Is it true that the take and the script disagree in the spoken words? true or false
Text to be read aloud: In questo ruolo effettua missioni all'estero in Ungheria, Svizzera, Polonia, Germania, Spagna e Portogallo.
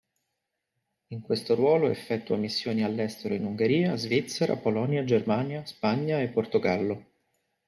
false